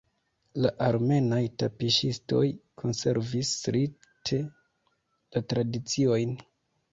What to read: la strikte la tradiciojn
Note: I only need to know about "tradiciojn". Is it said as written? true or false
true